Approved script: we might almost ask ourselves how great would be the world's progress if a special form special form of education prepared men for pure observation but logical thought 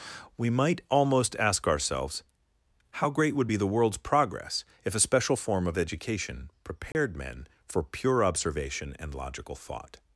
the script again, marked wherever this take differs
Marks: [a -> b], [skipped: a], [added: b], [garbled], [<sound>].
we might almost ask ourselves how great would be the world's progress if a special form [skipped: special form] of education prepared [dropout] men for pure observation [but -> and] logical thought